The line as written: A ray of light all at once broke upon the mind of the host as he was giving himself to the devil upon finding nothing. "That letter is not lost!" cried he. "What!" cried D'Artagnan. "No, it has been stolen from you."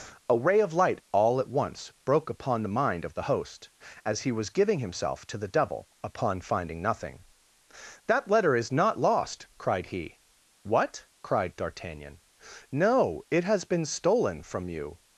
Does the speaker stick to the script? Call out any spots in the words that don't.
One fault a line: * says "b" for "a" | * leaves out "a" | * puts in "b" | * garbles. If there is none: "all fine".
all fine